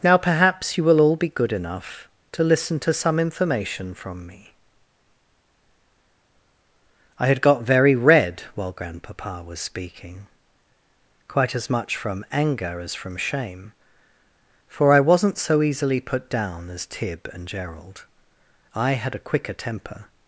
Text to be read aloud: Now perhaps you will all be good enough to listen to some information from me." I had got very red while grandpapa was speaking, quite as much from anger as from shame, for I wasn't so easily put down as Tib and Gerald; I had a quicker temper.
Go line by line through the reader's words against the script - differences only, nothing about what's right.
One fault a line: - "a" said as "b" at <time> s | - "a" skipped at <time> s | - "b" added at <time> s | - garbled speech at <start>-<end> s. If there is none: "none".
none